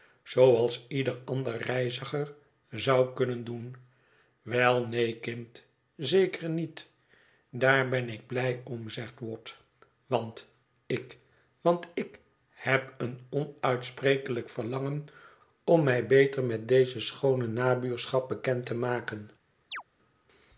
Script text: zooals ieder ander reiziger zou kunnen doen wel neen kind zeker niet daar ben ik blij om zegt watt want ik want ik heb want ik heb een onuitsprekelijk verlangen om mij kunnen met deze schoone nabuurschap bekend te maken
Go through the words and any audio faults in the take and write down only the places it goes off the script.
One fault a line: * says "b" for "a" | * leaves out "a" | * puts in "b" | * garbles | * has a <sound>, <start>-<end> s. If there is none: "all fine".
* leaves out "want ik heb"
* says "beter" for "kunnen"
* has a chirp, 19.7-19.8 s